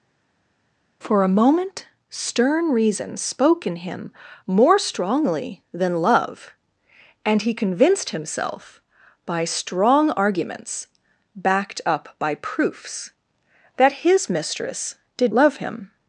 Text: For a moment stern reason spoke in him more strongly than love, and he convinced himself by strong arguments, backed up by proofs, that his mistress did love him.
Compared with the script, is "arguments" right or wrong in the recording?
right